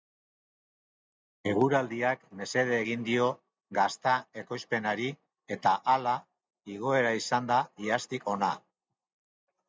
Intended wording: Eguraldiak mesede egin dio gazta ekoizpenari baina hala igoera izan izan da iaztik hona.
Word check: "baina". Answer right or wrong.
wrong